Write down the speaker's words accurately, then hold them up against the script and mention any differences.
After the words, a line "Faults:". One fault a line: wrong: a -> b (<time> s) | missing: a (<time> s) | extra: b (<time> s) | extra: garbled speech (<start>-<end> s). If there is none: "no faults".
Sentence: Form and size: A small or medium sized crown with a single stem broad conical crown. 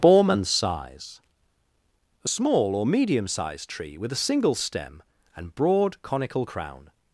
Form and size: A small or medium sized tree with a single stem and broad conical crown.
Faults:
wrong: crown -> tree (3.7 s)
extra: and (5.3 s)